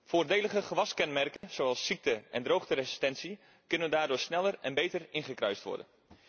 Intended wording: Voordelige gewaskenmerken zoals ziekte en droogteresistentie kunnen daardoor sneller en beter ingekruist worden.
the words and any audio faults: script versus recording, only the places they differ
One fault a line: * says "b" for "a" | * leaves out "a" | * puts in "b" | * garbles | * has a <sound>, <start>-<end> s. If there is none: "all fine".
* has a dropout, 1.4-1.4 s